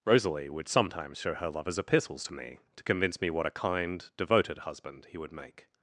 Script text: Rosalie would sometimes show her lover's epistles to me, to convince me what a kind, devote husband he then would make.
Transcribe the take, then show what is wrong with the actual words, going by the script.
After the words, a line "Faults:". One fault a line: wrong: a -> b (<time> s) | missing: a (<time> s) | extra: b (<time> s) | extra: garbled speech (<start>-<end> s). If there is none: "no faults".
Rosalie would sometimes show her lover's epistles to me, to convince me what a kind, devoted husband he would make.
Faults:
wrong: devote -> devoted (4.2 s)
missing: then (5.2 s)